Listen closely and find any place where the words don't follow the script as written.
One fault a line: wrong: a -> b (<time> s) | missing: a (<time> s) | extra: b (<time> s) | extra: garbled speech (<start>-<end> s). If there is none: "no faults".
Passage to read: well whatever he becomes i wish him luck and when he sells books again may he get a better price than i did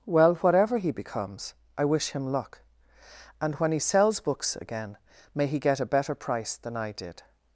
no faults